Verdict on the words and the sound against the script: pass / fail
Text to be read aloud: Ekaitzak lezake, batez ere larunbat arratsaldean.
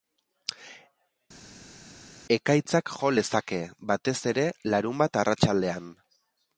fail